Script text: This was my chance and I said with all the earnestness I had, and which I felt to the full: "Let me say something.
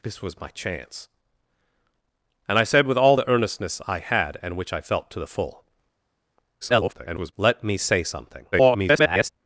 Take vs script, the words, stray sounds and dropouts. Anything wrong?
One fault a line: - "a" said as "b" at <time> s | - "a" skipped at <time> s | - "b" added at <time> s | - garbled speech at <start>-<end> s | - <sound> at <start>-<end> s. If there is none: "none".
- garbled speech at 6.6-7.3 s
- garbled speech at 8.5-9.3 s